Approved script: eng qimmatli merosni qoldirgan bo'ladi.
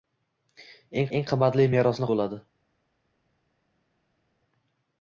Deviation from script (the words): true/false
true